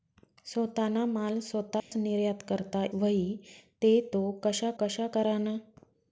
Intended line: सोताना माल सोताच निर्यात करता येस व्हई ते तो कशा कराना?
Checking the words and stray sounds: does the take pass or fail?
fail